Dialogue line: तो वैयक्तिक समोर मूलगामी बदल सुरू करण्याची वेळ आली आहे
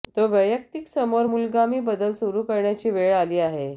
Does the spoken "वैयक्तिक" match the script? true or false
true